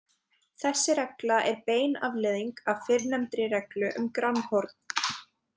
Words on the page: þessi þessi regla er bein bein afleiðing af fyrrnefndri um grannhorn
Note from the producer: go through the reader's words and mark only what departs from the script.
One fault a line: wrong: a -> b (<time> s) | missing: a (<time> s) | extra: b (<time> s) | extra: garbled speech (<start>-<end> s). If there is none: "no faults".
missing: þessi (0.9 s)
missing: bein (2.0 s)
extra: reglu (3.6 s)